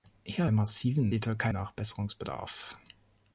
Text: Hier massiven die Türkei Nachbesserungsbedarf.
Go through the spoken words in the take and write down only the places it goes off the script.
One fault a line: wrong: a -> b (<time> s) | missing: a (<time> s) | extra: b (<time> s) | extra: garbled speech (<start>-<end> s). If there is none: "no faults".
no faults